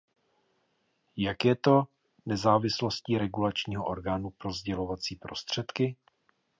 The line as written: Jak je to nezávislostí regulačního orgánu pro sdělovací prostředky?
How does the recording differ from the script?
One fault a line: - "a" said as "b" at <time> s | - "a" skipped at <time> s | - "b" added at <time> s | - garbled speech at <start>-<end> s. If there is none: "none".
none